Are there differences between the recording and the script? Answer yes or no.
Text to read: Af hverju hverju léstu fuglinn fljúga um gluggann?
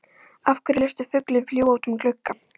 yes